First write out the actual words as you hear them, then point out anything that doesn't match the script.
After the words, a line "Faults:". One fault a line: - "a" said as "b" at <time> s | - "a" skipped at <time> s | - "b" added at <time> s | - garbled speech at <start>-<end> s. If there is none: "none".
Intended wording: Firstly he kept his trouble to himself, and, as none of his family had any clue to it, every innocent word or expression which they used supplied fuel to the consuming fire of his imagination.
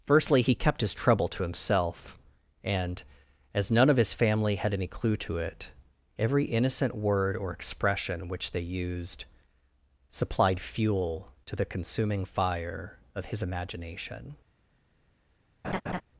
Firstly he kept his trouble to himself, and, as none of his family had any clue to it, every innocent word or expression which they used supplied fuel to the consuming fire of his imagination.
Faults:
none